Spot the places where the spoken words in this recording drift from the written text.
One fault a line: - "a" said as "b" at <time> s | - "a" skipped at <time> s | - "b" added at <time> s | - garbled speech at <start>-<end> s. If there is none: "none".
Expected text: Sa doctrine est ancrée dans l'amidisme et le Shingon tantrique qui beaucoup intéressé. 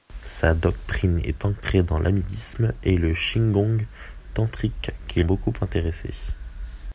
none